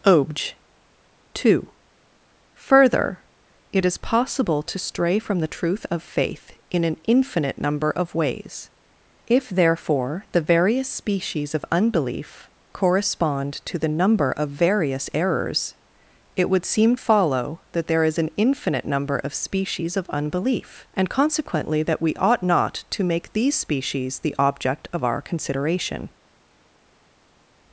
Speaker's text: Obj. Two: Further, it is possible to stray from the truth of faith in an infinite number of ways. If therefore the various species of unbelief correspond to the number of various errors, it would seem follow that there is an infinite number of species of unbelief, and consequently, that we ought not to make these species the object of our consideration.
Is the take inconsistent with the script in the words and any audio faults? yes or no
no